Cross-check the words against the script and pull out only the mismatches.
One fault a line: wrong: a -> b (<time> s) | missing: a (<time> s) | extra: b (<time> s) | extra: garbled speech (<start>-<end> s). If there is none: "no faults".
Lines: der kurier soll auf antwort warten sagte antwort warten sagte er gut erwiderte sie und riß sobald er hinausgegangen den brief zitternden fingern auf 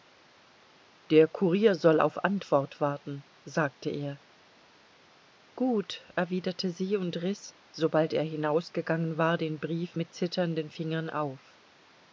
missing: antwort warten sagte (3.9 s)
extra: war (9.2 s)
extra: mit (10.0 s)